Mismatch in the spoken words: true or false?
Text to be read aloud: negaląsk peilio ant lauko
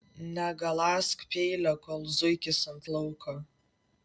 true